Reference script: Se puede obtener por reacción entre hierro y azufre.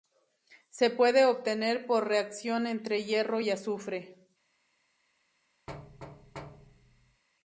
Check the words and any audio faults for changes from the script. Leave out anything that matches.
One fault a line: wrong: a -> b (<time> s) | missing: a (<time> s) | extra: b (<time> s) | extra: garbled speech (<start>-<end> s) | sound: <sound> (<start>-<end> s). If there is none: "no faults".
sound: thud (5.7-7.2 s)